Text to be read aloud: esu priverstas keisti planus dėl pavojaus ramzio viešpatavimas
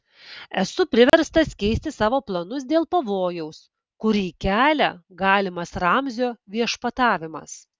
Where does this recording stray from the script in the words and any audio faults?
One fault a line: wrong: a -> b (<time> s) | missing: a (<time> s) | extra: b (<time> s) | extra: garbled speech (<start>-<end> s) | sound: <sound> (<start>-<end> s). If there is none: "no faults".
sound: dropout (1.1-1.1 s)
extra: savo (2.0 s)
extra: kurį kelia galimas (4.0 s)